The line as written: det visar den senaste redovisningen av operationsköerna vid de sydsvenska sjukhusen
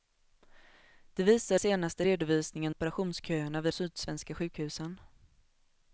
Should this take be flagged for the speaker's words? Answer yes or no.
yes